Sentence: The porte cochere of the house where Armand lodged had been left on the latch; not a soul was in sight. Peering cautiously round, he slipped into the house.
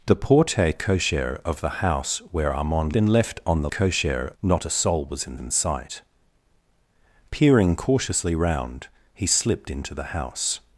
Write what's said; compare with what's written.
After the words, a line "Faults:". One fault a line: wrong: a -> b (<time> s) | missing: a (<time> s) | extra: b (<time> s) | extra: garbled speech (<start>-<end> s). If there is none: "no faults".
The porte cochere of the house where Armand been left on the cochere; not a soul was in in sight. Peering cautiously round, he slipped into the house.
Faults:
missing: lodged had (2.9 s)
wrong: latch -> cochere (3.7 s)
extra: in (5.4 s)